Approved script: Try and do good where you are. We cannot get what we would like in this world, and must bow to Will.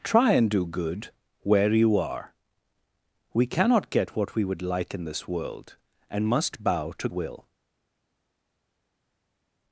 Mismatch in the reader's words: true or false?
false